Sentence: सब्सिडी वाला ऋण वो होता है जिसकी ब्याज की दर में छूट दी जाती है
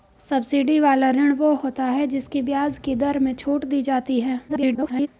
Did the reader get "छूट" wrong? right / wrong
right